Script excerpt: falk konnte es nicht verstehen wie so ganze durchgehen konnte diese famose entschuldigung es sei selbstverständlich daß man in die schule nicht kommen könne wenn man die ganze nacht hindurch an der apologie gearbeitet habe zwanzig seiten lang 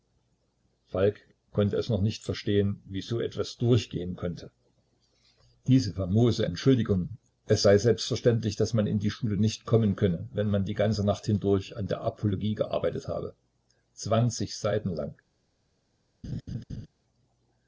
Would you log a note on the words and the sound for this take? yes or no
yes